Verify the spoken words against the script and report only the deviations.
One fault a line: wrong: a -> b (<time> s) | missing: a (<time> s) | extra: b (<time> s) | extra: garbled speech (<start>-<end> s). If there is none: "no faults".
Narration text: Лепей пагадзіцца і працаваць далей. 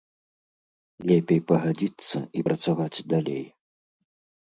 no faults